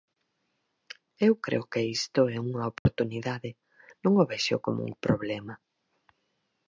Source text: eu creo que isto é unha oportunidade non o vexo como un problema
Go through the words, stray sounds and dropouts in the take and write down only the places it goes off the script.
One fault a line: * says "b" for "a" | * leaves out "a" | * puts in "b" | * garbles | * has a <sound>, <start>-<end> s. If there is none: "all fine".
* has a dropout, 2.8-2.9 s